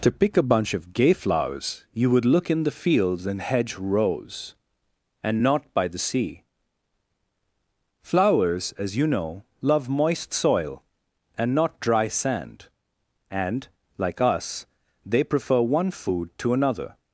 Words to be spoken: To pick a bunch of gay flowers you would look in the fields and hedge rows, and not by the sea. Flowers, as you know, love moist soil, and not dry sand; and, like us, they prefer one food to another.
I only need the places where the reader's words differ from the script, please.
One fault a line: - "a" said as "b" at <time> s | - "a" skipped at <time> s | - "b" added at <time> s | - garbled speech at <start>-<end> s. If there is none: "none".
none